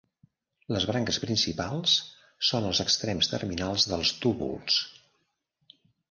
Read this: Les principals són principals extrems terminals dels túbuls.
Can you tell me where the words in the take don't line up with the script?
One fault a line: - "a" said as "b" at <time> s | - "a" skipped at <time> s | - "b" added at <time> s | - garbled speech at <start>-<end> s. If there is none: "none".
- "branques" added at 0.9 s
- "principals" said as "els" at 2.7 s